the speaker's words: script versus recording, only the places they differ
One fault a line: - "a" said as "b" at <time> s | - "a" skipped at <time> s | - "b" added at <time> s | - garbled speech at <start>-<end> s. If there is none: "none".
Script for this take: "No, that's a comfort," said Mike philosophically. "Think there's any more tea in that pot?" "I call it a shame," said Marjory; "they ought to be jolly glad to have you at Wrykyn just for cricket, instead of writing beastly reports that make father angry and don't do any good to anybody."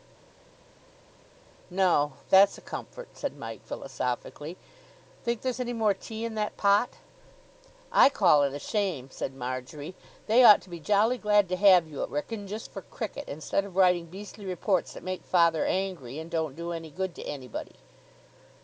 none